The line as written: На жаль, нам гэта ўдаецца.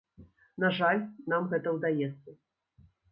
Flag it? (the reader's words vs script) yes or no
no